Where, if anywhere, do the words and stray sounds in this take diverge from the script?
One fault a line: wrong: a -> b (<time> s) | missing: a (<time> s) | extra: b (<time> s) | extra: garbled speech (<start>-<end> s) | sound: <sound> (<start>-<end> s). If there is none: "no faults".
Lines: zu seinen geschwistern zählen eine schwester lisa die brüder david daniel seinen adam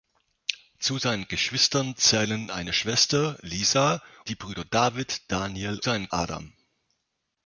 no faults